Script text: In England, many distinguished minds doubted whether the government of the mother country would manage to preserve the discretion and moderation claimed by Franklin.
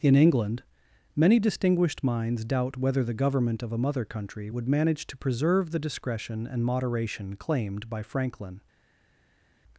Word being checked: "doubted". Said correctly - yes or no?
no